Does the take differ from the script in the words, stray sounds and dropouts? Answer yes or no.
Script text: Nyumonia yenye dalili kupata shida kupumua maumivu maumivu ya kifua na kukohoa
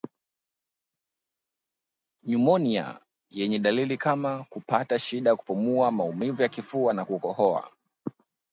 yes